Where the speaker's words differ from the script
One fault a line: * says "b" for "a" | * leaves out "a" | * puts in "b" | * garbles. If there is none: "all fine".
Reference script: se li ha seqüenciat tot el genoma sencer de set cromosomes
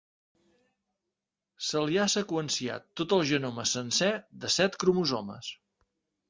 all fine